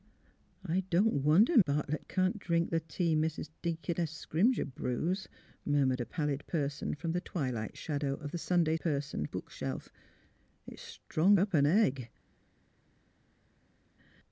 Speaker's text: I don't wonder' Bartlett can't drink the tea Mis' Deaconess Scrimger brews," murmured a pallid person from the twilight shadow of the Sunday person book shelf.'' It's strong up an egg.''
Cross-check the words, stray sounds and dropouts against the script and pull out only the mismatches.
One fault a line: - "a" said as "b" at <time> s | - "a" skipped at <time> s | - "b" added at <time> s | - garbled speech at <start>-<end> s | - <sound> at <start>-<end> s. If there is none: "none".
none